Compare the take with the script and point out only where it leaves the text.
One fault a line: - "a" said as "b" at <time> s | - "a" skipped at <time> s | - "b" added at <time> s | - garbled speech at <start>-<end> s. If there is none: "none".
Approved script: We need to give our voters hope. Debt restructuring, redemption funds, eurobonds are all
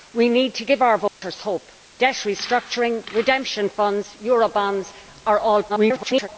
- garbled speech at 5.7-6.3 s